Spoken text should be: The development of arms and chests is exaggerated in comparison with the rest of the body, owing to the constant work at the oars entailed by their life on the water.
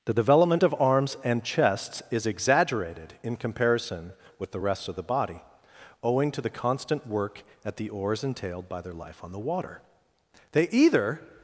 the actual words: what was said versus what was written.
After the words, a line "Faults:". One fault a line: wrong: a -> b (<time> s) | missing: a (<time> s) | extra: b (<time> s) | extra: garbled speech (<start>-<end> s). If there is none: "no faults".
The development of arms and chests is exaggerated in comparison with the rest of the body, owing to the constant work at the oars entailed by their life on the water. They either
Faults:
extra: They either (10.5 s)